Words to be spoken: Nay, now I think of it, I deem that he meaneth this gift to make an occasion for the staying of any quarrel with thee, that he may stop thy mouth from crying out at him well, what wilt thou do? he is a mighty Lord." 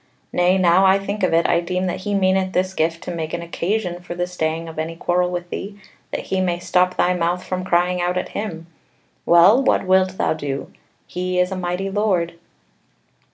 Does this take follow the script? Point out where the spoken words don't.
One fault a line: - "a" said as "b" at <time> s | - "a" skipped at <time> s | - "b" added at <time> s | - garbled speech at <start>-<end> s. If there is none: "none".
none